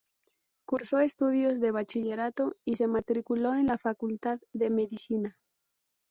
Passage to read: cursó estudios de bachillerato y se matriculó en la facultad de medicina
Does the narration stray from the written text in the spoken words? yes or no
no